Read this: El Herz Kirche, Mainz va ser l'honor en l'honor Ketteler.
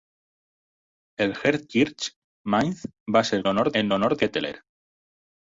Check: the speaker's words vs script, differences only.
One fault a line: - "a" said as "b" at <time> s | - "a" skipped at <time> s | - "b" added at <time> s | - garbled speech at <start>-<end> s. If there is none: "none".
none